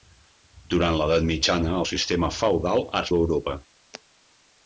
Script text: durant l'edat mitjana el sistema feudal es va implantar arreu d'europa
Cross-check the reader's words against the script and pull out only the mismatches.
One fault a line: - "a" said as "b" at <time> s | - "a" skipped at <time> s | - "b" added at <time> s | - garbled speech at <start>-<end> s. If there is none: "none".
- "va implantar arreu" skipped at 3.1 s